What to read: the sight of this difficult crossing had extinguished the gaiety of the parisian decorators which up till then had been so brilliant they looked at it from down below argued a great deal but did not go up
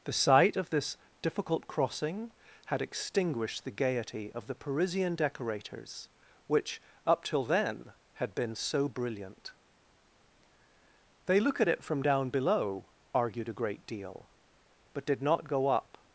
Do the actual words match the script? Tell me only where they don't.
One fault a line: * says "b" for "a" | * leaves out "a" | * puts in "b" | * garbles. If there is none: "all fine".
* says "look" for "looked"